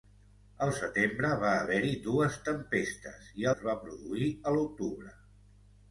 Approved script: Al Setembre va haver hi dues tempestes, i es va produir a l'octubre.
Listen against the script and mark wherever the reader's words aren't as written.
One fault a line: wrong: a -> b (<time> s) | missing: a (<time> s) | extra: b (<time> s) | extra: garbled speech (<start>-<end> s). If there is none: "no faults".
no faults